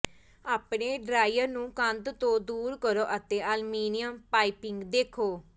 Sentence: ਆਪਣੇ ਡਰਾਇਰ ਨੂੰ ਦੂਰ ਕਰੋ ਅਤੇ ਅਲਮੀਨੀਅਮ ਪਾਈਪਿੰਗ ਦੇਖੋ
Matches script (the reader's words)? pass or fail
fail